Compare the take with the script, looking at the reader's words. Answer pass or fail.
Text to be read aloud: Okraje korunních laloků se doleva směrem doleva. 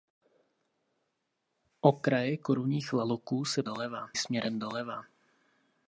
pass